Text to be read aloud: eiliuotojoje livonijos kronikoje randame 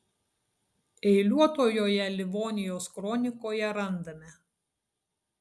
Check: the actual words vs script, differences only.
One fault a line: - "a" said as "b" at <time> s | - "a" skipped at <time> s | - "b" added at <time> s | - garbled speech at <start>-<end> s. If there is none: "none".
none